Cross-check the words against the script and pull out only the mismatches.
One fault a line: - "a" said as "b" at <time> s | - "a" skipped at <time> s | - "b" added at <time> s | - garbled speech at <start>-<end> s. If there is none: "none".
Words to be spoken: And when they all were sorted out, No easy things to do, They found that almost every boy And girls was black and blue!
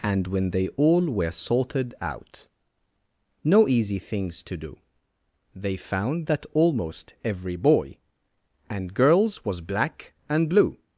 none